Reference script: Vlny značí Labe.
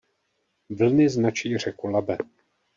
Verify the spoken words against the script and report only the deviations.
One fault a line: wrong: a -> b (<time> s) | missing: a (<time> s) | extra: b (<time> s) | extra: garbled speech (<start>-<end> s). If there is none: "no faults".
extra: řeku (1.6 s)